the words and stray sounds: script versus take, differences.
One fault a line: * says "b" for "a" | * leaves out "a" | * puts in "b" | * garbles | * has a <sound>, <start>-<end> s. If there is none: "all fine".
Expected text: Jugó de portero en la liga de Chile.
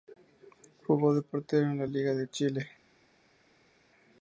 all fine